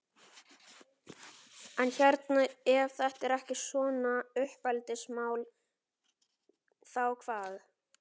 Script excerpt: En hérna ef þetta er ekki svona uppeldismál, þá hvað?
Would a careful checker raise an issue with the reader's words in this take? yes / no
no